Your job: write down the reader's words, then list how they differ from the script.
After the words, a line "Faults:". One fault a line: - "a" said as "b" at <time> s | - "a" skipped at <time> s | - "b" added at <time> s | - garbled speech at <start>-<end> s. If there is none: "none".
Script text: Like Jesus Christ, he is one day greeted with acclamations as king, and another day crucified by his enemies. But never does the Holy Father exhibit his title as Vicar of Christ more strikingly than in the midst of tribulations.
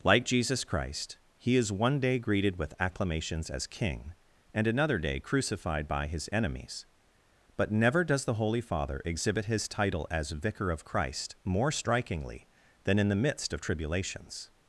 Like Jesus Christ, he is one day greeted with acclamations as king, and another day crucified by his enemies. But never does the Holy Father exhibit his title as Vicar of Christ more strikingly than in the midst of tribulations.
Faults:
none